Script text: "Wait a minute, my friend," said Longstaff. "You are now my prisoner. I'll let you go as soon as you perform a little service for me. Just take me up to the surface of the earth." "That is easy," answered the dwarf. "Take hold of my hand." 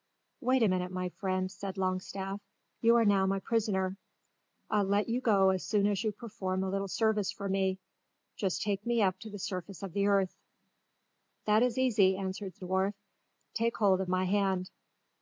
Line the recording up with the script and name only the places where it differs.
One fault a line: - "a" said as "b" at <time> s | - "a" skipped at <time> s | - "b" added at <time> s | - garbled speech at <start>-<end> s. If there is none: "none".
none